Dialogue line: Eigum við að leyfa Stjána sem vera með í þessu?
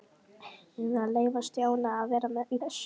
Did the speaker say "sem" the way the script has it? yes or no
no